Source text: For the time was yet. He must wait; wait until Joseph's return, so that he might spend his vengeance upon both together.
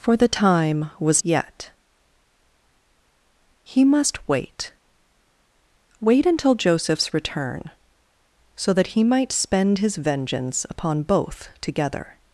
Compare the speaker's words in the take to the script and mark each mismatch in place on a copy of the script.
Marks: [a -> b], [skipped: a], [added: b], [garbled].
For the time was yet. He must wait; wait until Joseph's return, so that he might spend his vengeance upon both together.